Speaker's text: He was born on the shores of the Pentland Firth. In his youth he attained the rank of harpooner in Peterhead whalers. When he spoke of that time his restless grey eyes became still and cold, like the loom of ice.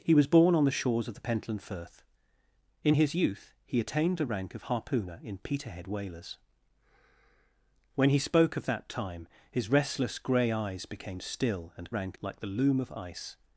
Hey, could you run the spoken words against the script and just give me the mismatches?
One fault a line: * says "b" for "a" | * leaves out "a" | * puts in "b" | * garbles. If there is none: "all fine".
* says "rank" for "cold"